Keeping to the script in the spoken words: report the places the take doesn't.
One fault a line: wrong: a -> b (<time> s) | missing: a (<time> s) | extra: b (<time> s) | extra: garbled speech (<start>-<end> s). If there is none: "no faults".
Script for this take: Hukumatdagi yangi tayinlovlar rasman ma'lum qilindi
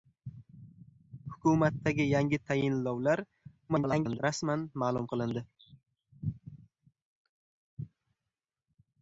extra: garbled speech (3.7-4.2 s)